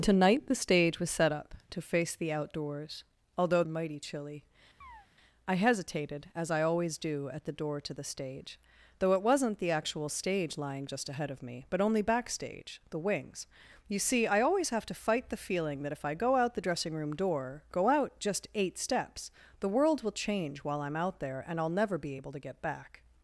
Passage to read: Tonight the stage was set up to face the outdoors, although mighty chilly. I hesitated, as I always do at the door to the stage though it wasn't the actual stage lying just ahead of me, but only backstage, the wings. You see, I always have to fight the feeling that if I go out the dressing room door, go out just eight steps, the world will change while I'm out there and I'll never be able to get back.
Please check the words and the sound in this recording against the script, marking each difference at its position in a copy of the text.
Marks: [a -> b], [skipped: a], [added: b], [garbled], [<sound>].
Tonight the stage was set up to face the outdoors, although mighty chilly. [chirp] I hesitated, as I always do at the door to the stage though it wasn't the actual stage lying just ahead of me, but only backstage, the wings. You see, I always have to fight the feeling that if I go out the dressing room door, go out just eight steps, the world will change while I'm out there and I'll never be able to get back.